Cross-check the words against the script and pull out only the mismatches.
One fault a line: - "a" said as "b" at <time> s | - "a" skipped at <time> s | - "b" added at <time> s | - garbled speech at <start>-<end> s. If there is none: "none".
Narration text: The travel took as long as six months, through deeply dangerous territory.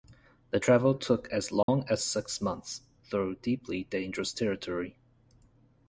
none